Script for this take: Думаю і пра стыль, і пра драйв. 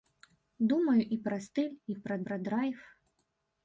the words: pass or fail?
fail